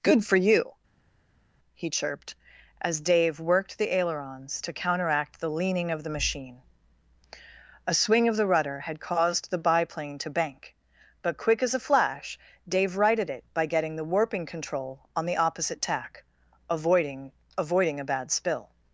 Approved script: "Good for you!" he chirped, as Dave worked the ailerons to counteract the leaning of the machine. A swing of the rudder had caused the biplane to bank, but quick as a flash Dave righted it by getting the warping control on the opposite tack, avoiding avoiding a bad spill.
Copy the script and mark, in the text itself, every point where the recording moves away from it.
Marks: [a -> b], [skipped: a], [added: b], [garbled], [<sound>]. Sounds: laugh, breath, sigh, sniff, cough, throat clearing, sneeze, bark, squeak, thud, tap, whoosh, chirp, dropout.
"Good for you!" he chirped, as Dave worked the ailerons to counteract the leaning of the machine. A swing of the rudder had caused the biplane to bank, but quick as a flash Dave righted it by getting the warping control on the opposite tack, avoiding avoiding a bad spill.